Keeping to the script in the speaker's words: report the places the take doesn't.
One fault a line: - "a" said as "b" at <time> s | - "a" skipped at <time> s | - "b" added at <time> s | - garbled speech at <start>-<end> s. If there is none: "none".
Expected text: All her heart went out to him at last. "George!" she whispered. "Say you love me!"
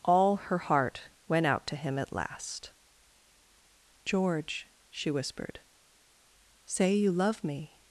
none